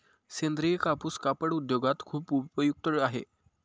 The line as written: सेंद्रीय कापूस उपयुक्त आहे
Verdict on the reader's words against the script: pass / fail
fail